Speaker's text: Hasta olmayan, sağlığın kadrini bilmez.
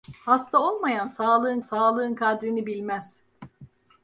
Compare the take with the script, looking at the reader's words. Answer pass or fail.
fail